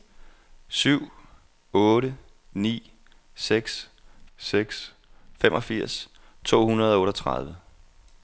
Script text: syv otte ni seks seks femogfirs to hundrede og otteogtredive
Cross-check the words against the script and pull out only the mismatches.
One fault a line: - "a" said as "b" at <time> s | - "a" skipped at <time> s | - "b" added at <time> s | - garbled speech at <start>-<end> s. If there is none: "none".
none